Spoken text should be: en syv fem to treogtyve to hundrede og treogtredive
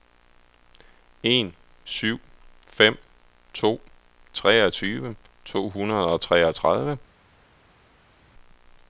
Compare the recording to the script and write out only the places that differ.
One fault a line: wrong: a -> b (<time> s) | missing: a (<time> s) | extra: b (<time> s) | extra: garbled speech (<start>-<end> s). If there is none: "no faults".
no faults